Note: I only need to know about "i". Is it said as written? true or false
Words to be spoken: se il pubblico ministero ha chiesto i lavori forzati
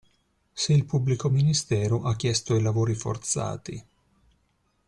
true